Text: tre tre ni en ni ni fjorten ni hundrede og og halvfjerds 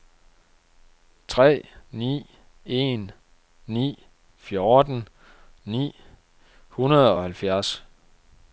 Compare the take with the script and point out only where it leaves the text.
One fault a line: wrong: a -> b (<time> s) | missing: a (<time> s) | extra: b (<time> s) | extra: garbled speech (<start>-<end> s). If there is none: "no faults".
missing: tre (1.7 s)
missing: ni (4.1 s)
missing: og (7.2 s)